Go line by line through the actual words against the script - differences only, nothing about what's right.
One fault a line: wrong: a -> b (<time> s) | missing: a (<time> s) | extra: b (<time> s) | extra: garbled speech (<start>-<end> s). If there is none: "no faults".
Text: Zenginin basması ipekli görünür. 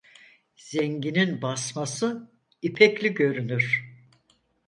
no faults